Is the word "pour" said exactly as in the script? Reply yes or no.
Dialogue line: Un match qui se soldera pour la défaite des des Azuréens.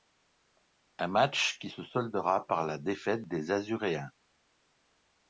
no